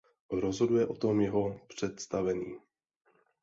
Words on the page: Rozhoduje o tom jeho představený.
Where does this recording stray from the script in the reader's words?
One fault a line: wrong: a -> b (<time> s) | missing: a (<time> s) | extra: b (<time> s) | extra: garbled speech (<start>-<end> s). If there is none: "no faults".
no faults